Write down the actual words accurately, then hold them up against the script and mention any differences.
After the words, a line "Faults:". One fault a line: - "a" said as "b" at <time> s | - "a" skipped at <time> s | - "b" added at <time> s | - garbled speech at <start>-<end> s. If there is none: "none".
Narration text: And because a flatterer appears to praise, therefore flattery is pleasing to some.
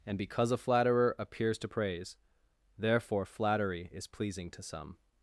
And because a flatterer appears to praise, therefore flattery is pleasing to some.
Faults:
none